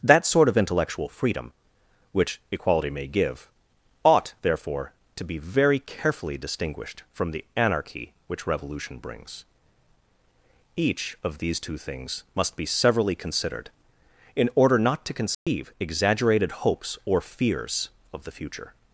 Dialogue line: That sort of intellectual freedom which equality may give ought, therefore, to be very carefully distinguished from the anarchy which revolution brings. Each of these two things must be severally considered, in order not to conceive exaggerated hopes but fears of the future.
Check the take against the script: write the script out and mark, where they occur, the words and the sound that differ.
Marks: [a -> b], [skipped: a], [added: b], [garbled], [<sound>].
That sort of intellectual freedom which equality may give ought, therefore, to be very carefully distinguished from the anarchy which revolution brings. Each of these two things must be severally considered, in order not to conceive [dropout] exaggerated hopes [but -> or] fears of the future.